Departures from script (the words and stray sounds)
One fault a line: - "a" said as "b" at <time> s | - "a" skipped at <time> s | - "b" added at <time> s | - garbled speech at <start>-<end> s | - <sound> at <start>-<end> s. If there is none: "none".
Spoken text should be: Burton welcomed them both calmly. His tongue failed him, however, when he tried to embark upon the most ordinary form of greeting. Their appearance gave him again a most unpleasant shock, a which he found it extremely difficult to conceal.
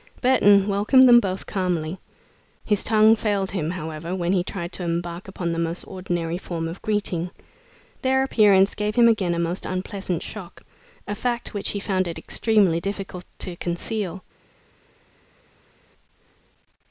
- "fact" added at 11.1 s